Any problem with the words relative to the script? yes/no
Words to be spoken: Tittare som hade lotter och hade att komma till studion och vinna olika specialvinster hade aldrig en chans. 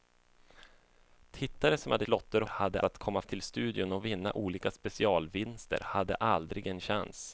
no